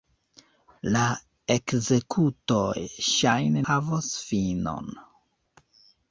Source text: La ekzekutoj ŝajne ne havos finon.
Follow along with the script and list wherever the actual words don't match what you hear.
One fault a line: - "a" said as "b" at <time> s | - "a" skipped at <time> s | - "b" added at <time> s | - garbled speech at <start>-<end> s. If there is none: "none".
- "ne" skipped at 3.6 s